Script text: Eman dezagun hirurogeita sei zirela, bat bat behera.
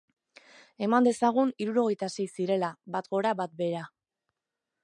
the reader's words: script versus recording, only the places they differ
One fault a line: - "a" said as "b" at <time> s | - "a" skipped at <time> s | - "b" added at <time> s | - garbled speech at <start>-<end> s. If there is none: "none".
- "gora" added at 3.2 s